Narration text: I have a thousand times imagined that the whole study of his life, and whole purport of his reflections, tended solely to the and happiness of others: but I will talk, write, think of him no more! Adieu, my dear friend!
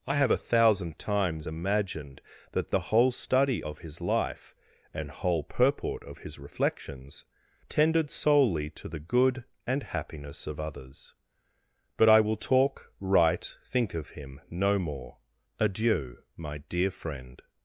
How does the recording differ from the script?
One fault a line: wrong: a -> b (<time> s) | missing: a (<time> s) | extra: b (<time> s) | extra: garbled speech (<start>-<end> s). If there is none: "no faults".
extra: good (9.0 s)